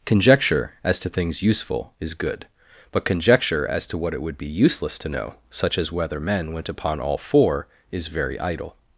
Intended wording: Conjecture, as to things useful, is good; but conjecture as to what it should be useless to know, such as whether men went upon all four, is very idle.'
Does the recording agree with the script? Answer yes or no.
no